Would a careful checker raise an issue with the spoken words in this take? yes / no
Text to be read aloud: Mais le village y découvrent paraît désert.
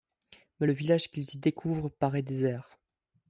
yes